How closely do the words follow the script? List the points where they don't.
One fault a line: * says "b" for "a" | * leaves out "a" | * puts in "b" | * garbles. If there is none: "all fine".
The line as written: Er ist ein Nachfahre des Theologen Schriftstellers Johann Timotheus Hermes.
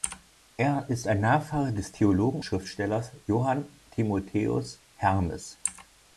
all fine